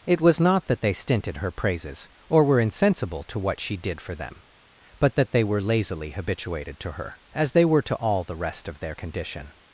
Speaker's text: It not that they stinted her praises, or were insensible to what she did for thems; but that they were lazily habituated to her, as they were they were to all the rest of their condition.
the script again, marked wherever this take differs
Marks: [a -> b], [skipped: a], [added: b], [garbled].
It [added: was] not that they stinted her praises, or were insensible to what she did for [thems; -> them] but that they were lazily habituated to her, as they were [skipped: they were] to all the rest of their condition.